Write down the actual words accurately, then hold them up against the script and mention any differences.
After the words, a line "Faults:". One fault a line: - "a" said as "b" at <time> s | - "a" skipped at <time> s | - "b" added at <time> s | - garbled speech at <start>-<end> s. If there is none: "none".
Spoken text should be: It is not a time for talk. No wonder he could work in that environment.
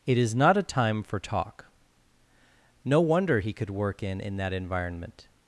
It is not a time for talk. No wonder he could work in in that environment.
Faults:
- "in" added at 4.2 s